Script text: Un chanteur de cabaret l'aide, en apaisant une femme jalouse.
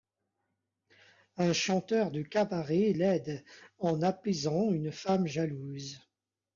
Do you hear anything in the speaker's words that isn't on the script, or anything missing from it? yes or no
no